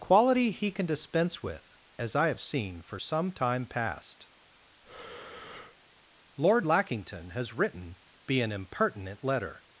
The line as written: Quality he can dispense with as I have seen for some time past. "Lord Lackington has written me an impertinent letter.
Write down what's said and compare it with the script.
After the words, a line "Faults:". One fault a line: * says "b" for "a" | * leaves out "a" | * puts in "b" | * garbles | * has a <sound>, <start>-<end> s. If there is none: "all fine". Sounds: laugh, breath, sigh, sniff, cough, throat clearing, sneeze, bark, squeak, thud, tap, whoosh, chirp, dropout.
Quality he can dispense with as I have seen for some time past. "Lord Lackington has written be an impertinent letter.
Faults:
* has a breath, 4.8-5.8 s
* says "be" for "me"